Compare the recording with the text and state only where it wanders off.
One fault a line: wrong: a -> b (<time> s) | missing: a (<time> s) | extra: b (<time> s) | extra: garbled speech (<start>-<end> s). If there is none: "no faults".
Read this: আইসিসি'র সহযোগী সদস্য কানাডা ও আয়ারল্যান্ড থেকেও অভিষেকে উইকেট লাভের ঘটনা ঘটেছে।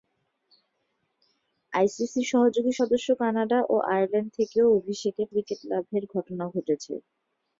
no faults